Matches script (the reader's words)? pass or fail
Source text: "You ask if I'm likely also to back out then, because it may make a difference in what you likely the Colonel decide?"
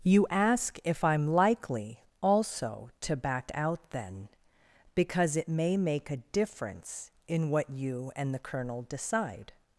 fail